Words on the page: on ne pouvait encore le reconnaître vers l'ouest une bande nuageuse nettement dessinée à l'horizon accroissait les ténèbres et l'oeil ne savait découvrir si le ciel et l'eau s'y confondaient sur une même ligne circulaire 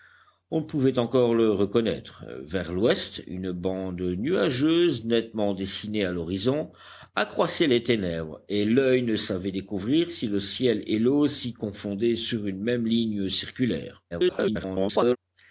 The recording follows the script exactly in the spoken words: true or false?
false